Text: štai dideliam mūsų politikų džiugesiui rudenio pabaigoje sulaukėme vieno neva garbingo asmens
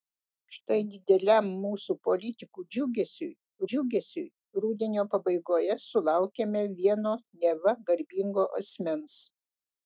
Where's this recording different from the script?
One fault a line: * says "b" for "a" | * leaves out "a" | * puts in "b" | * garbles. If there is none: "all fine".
* puts in "džiugesiui"